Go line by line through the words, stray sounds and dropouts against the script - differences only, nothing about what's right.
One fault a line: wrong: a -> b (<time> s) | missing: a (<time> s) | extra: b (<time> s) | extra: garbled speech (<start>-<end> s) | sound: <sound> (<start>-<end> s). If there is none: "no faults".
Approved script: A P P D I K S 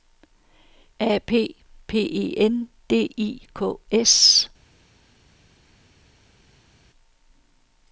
extra: E N (2.0 s)